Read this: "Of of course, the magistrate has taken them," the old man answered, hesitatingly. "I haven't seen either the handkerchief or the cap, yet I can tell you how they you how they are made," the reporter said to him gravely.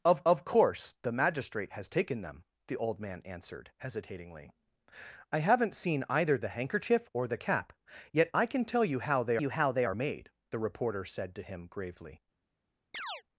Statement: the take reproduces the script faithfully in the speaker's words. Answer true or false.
true